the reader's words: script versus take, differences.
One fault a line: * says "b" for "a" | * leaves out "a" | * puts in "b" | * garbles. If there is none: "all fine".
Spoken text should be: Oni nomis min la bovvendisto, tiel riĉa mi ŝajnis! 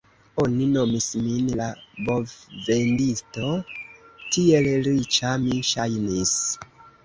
all fine